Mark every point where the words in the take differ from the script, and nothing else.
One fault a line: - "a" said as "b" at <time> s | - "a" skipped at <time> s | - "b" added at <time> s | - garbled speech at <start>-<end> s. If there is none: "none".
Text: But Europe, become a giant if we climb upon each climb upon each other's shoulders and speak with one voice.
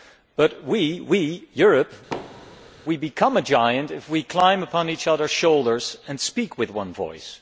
- "we" added at 0.6 s
- "climb upon each" skipped at 5.1 s